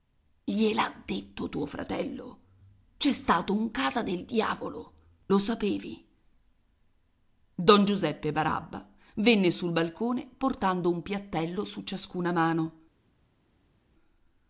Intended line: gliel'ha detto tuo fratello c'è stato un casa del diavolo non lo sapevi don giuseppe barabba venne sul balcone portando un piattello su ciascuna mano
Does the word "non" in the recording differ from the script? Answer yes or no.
yes